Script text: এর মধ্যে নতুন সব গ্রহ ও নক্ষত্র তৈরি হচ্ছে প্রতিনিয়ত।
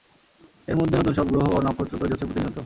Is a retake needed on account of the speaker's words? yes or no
no